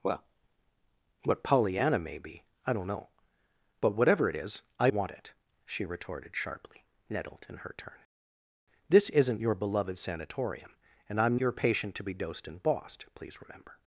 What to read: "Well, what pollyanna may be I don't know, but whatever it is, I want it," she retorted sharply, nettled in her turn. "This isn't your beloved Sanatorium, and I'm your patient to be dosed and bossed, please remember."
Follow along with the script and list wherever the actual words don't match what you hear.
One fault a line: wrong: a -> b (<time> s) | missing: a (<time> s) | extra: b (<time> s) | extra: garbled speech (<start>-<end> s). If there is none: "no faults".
no faults